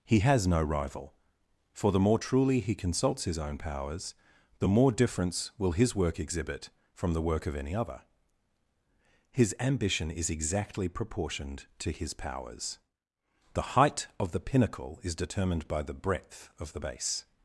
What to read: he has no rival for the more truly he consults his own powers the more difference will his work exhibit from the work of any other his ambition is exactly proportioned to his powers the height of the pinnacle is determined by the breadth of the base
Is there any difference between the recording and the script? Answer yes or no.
no